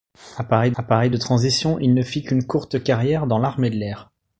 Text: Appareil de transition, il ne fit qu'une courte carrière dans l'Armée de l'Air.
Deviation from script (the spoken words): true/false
true